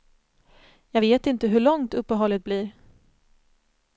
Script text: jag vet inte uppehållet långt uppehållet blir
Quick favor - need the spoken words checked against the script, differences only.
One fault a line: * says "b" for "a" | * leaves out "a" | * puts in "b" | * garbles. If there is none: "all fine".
* says "hur" for "uppehållet"